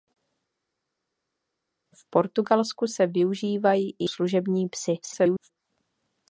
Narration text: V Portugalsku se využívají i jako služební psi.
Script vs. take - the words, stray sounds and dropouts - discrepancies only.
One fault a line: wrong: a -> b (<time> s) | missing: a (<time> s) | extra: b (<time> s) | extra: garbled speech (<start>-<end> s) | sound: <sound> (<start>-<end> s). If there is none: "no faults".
missing: jako (4.1 s)
extra: garbled speech (5.0-5.5 s)